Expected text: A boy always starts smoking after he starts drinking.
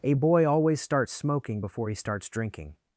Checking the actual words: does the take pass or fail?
fail